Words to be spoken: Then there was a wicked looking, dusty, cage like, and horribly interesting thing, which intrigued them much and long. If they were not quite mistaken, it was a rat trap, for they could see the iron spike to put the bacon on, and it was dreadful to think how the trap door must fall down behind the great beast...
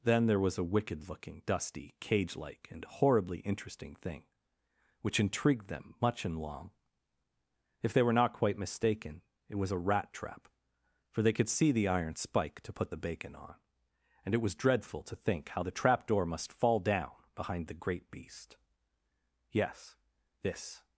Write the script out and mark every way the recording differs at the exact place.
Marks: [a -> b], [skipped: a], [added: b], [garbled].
Then there was a wicked looking, dusty, cage like, and horribly interesting thing, which intrigued them much and long. If they were not quite mistaken, it was a rat trap, for they could see the iron spike to put the bacon on, and it was dreadful to think how the trap door must fall down behind the great beast... [added: Yes this]